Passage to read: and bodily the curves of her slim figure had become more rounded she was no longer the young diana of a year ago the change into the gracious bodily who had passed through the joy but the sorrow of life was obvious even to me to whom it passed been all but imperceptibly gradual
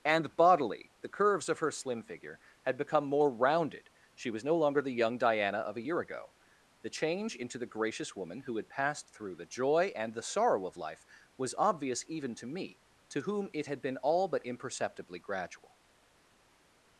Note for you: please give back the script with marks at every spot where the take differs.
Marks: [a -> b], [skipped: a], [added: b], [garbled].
and bodily the curves of her slim figure had become more rounded she was no longer the young diana of a year ago the change into the gracious [bodily -> woman] who had passed through the joy [but -> and] the sorrow of life was obvious even to me to whom it [passed -> had] been all but imperceptibly gradual